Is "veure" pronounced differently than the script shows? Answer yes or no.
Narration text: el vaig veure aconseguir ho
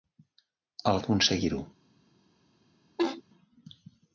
yes